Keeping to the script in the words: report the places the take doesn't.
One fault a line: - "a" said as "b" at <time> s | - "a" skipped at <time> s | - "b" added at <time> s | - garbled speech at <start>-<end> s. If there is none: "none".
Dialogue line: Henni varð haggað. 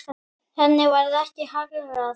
- "ekki" added at 1.2 s